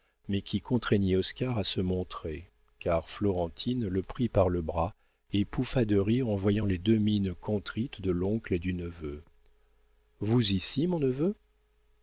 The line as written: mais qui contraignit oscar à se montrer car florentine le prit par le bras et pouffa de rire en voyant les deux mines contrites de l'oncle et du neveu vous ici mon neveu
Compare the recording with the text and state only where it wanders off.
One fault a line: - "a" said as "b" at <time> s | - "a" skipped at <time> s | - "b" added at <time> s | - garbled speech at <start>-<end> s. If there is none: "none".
none